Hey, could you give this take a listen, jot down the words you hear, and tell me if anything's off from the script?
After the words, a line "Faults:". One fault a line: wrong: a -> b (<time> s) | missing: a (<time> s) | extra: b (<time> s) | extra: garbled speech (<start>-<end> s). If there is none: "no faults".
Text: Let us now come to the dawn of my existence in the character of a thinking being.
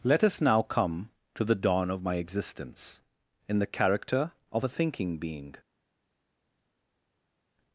Let us now come to the dawn of my existence in the character of a thinking being.
Faults:
no faults